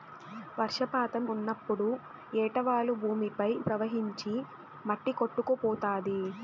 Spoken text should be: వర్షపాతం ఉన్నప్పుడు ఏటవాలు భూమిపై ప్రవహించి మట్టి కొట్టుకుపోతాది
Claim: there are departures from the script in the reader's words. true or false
false